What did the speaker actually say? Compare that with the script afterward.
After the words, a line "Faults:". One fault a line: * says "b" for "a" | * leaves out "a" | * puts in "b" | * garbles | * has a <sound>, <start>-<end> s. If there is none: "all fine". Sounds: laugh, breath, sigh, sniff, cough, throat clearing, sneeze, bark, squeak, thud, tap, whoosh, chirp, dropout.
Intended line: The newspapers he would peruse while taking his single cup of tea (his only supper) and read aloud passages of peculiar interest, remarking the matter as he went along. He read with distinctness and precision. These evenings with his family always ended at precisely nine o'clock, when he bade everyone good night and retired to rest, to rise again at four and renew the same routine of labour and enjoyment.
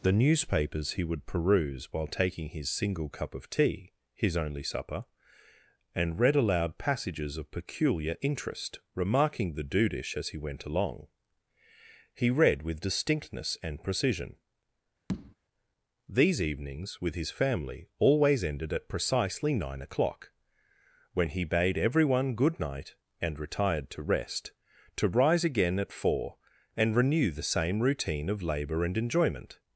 The newspapers he would peruse while taking his single cup of tea (his only supper) and read aloud passages of peculiar interest, remarking the dudish as he went along. He read with distinctness and precision. These evenings with his family always ended at precisely nine o'clock, when he bade everyone good night and retired to rest, to rise again at four and renew the same routine of labour and enjoyment.
Faults:
* says "dudish" for "matter"
* has a tap, 15.1-15.4 s